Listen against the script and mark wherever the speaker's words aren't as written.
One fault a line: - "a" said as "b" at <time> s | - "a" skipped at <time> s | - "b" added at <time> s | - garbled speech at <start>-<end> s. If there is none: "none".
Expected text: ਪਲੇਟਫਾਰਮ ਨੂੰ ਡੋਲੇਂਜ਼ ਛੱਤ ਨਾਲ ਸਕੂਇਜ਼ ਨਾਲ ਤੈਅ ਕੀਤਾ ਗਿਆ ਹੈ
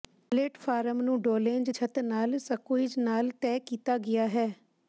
none